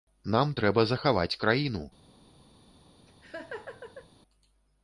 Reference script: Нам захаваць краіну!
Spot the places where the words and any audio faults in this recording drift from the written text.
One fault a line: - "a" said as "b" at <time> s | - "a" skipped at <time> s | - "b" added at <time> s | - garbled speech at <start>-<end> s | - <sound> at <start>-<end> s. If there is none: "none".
- "трэба" added at 0.6 s
- laugh at 3.1-4.1 s